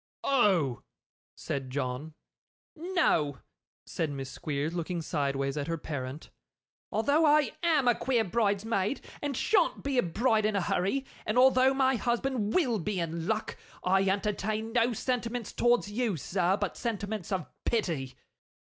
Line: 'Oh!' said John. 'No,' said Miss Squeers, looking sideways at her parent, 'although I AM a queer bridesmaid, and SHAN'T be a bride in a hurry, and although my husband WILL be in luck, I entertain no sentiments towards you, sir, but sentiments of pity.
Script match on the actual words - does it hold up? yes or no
yes